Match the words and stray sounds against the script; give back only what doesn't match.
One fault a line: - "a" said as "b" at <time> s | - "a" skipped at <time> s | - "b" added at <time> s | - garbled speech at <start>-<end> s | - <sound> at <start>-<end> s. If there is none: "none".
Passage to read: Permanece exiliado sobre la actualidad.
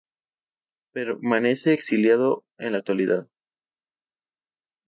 - "sobre" said as "en" at 2.6 s